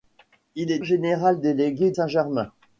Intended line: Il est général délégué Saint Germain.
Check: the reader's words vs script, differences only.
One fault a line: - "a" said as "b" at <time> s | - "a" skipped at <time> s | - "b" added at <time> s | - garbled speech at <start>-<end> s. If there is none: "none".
none